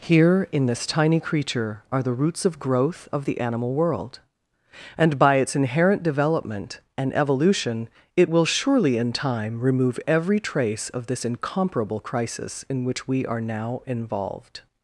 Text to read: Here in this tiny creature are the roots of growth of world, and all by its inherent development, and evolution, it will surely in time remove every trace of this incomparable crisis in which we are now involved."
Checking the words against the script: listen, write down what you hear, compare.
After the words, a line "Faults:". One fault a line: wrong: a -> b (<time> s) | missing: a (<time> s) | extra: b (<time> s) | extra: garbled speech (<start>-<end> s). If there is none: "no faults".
Here in this tiny creature are the roots of growth of the animal world, and by its inherent development, and evolution, it will surely in time remove every trace of this incomparable crisis in which we are now involved."
Faults:
extra: the animal (3.2 s)
missing: all (5.2 s)